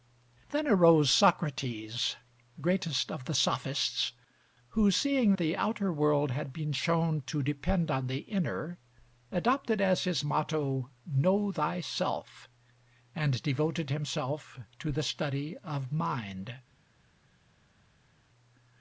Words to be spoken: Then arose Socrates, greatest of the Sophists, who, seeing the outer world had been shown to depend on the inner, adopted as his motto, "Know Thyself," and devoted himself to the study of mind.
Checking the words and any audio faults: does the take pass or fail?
pass